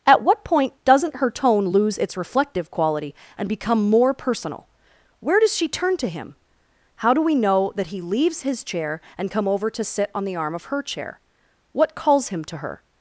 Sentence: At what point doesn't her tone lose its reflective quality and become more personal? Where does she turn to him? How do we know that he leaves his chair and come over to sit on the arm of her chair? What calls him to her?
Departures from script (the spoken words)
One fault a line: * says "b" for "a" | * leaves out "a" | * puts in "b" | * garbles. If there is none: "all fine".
all fine